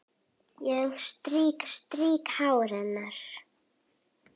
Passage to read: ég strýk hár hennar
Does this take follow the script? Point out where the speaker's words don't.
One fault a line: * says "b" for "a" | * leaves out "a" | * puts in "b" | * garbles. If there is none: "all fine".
* puts in "strýk"